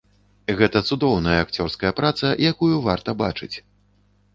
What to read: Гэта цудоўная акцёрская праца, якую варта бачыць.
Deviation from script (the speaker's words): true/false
false